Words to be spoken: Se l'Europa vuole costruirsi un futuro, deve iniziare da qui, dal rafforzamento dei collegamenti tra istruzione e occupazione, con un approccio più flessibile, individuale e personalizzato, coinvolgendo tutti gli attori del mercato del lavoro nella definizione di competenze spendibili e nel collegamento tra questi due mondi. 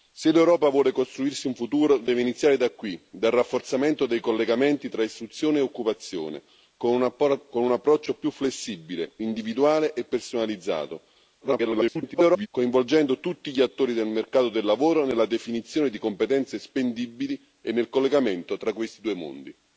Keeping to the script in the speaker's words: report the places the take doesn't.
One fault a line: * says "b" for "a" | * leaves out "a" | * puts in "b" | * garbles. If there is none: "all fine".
* garbles